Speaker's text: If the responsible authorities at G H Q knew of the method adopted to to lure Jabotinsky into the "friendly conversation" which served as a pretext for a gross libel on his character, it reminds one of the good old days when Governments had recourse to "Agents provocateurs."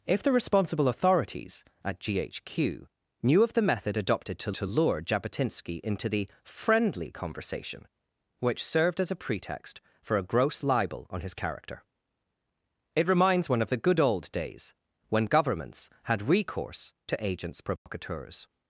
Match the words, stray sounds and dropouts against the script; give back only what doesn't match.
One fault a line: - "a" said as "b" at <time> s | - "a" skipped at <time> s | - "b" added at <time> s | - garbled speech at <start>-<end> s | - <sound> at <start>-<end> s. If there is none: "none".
- dropout at 17.8-17.9 s